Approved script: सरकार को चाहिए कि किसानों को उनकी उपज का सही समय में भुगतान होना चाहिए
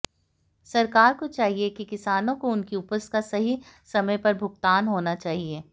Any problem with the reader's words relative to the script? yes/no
yes